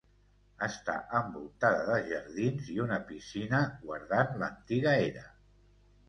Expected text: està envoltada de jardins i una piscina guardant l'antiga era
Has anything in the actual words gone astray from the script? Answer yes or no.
no